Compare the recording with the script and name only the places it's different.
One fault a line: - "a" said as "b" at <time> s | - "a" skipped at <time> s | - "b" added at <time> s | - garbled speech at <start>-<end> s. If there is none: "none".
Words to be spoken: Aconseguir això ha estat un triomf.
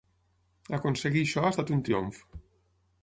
none